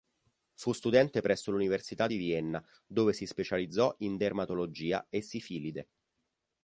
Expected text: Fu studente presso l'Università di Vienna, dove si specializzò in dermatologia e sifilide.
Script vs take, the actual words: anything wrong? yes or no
no